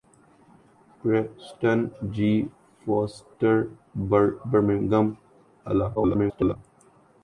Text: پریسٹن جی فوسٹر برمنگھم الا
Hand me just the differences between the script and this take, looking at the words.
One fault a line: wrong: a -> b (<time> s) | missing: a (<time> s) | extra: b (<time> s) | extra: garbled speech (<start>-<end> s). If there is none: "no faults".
extra: garbled speech (5.9-6.6 s)